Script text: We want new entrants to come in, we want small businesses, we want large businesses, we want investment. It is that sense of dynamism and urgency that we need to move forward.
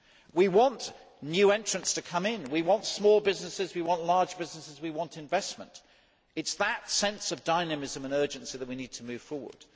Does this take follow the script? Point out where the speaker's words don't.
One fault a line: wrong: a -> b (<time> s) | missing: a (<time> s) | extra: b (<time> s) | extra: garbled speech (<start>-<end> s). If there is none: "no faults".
no faults